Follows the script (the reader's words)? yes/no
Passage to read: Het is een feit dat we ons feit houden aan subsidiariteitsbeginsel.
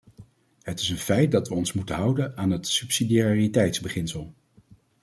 no